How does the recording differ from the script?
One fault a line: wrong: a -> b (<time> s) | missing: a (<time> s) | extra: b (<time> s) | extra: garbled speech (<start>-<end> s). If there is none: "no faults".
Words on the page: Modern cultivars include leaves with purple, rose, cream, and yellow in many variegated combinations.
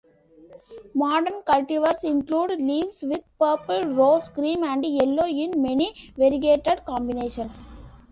no faults